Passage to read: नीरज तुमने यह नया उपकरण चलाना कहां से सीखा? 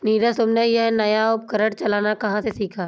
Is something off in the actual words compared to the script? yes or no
no